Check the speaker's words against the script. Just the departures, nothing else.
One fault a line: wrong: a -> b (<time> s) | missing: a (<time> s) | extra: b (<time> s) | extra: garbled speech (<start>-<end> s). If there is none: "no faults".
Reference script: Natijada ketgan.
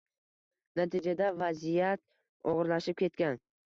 extra: vaziyat og‘irlashib (1.4 s)